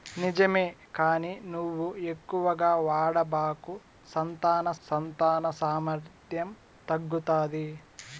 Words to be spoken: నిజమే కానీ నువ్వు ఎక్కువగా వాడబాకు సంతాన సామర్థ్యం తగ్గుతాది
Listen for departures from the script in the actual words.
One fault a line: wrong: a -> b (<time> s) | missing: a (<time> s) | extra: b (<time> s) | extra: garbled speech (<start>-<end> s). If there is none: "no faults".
extra: సంతాన (4.8 s)